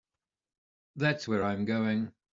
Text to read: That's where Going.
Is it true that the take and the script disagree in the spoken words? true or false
true